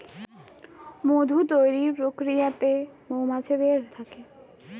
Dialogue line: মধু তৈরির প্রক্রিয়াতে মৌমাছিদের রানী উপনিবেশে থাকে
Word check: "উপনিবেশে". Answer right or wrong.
wrong